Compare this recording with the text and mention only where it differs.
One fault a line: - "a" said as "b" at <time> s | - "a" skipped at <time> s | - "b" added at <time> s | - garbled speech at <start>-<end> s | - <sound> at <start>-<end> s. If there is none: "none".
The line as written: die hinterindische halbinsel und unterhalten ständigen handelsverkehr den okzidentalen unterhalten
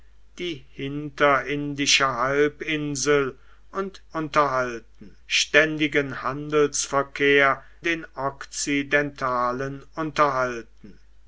none